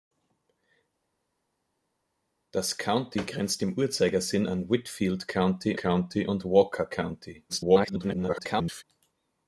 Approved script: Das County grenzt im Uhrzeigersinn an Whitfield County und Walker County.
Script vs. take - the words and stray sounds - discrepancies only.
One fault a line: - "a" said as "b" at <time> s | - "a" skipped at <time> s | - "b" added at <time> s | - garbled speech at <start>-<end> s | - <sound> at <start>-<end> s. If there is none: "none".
- "County" added at 5.7 s
- garbled speech at 7.5-8.8 s